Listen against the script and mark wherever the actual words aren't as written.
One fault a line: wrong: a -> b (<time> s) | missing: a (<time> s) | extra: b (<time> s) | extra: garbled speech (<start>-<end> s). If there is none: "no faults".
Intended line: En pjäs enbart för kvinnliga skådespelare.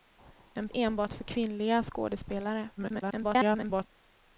missing: pjäs (0.7 s)
extra: garbled speech (2.8-3.9 s)